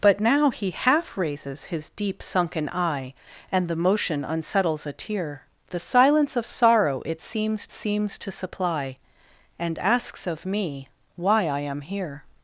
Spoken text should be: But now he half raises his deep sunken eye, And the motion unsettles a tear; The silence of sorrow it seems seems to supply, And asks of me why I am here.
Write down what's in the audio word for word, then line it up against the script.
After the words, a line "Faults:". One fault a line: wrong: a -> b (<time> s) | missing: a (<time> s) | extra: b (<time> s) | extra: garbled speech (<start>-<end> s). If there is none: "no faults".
But now he half raises his deep sunken eye, And the motion unsettles a tear; The silence of sorrow it seems seems to supply, And asks of me why I am here.
Faults:
no faults